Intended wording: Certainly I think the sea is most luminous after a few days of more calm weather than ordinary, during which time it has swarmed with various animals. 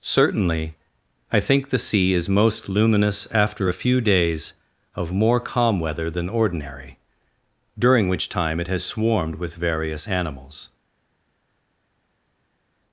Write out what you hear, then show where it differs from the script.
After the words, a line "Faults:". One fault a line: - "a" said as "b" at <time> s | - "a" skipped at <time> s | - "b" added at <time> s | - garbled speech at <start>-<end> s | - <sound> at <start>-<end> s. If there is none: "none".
Certainly I think the sea is most luminous after a few days of more calm weather than ordinary, during which time it has swarmed with various animals.
Faults:
none